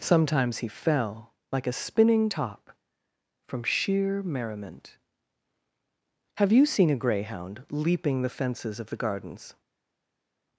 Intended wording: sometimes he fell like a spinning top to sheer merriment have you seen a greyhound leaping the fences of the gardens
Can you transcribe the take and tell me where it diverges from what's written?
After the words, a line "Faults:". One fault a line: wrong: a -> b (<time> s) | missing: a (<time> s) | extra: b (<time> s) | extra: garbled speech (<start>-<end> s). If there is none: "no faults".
sometimes he fell like a spinning top from sheer merriment have you seen a greyhound leaping the fences of the gardens
Faults:
wrong: to -> from (3.5 s)